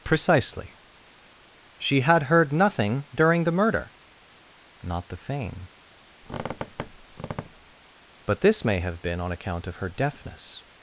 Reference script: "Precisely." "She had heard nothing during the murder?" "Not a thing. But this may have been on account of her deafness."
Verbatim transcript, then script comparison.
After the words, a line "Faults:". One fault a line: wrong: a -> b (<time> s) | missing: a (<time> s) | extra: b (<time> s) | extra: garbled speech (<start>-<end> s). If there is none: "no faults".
"Precisely." "She had heard nothing during the murder?" "Not the thing. But this may have been on account of her deafness."
Faults:
wrong: a -> the (5.1 s)